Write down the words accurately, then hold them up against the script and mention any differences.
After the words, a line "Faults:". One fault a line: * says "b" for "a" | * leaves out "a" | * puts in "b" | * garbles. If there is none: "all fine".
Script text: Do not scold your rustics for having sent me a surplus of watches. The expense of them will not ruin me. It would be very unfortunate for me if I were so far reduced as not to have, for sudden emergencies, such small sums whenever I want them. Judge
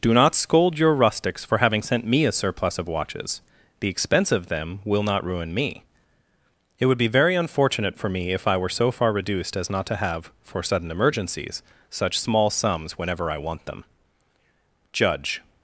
Do not scold your rustics for having sent me a surplus of watches. The expense of them will not ruin me. It would be very unfortunate for me if I were so far reduced as not to have, for sudden emergencies, such small sums whenever I want them. Judge
Faults:
all fine